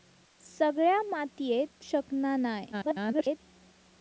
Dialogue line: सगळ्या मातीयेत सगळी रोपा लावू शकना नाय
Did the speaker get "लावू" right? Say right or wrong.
wrong